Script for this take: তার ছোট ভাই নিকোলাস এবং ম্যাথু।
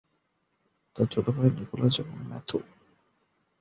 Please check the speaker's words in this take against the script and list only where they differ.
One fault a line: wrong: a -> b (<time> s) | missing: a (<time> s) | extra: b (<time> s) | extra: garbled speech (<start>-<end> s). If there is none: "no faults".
no faults